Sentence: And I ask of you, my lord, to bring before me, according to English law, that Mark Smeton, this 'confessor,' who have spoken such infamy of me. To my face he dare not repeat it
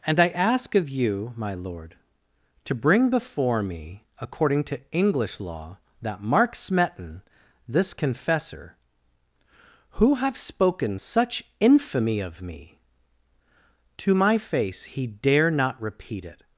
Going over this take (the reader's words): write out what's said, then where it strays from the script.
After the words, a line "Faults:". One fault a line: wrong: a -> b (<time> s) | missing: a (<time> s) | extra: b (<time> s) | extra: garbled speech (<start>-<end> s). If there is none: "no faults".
And I ask of you, my lord, to bring before me, according to English law, that Mark Smeton, this 'confessor,' who have spoken such infamy of me. To my face he dare not repeat it
Faults:
no faults